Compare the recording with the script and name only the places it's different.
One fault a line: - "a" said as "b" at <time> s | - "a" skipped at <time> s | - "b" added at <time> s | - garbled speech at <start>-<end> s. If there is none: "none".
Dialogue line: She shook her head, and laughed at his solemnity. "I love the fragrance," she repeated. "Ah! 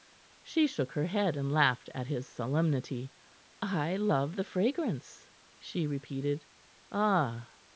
none